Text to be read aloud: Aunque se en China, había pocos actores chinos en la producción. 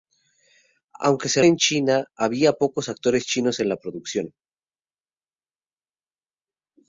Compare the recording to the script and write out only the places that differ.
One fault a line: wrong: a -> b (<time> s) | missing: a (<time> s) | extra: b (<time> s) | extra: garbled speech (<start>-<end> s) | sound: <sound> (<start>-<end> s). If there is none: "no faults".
no faults